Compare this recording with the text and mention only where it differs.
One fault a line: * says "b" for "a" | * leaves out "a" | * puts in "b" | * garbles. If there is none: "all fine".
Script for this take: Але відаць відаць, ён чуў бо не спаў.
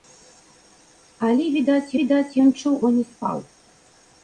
all fine